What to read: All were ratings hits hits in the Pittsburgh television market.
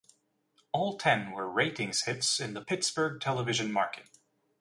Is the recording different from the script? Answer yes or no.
yes